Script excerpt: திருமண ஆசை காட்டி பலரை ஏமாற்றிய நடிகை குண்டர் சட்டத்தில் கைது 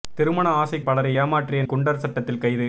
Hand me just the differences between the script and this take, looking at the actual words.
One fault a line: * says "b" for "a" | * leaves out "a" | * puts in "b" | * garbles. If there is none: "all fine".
* leaves out "காட்டி"
* leaves out "நடிகை"